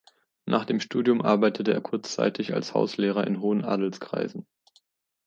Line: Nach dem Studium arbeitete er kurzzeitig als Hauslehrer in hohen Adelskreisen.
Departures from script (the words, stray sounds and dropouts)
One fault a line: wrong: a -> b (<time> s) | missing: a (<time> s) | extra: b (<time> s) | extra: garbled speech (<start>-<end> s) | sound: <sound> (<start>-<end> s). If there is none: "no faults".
no faults